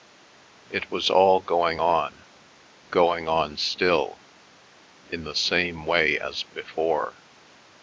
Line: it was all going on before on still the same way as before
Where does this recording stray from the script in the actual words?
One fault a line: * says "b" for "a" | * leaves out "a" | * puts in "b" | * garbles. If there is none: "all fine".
* says "going" for "before"
* puts in "in"